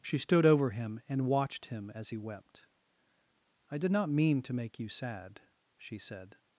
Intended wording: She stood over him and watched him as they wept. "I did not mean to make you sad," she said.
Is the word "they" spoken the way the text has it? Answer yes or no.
no